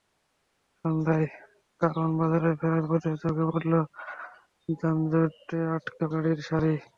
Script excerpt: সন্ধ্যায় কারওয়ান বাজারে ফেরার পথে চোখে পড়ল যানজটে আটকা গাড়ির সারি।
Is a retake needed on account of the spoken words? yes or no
no